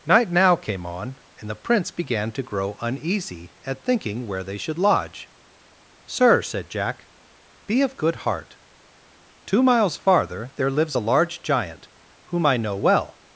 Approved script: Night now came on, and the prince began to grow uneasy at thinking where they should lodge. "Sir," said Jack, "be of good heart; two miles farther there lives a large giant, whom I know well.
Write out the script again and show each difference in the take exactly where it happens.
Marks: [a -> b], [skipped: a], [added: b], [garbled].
Night now came on, and the prince began to grow uneasy at thinking where they should lodge. "Sir," said Jack, "be of good heart; two miles farther there lives a large giant, whom I know well.